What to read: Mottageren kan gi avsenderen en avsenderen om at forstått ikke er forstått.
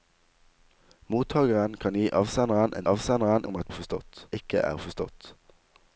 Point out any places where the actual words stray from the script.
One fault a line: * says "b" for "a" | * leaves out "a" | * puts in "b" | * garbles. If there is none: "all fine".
all fine